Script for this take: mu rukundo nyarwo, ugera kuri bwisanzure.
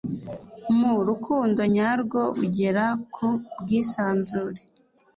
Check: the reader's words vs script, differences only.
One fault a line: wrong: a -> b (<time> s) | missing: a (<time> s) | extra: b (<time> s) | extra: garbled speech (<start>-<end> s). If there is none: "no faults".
wrong: kuri -> ku (3.1 s)